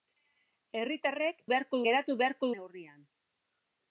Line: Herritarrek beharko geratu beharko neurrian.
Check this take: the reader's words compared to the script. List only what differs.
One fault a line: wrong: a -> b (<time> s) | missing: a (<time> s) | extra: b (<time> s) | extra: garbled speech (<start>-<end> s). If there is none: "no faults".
no faults